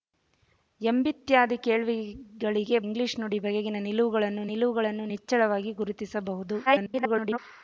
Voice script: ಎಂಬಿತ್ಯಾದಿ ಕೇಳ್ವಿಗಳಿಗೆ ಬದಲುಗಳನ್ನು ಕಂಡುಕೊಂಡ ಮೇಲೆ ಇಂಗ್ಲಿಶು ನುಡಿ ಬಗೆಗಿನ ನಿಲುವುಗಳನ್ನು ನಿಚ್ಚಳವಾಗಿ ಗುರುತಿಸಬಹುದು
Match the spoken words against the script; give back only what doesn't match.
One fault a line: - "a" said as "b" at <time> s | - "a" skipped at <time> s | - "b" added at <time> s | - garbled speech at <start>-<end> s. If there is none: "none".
- "ಬದಲುಗಳನ್ನು ಕಂಡುಕೊಂಡ ಮೇಲೆ" skipped at 2.8 s
- "ನಿಲುವುಗಳನ್ನು" added at 4.5 s
- garbled speech at 6.7-7.4 s